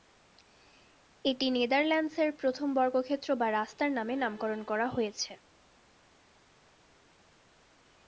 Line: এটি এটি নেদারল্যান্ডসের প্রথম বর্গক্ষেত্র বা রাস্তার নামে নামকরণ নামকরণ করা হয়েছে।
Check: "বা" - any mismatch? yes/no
no